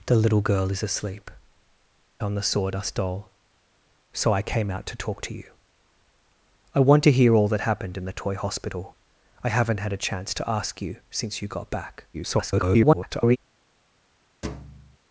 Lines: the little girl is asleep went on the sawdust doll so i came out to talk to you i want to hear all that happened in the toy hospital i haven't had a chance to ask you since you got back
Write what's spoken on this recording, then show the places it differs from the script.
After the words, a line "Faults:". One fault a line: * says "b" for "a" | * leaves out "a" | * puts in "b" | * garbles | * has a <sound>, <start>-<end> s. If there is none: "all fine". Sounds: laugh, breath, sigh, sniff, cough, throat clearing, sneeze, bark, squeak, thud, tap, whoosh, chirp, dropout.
the little girl is asleep on the sawdust doll so i came out to talk to you i want to hear all that happened in the toy hospital i haven't had a chance to ask you since you got back [garbled]
Faults:
* leaves out "went"
* garbles
* has a thud, 14.4-15.0 s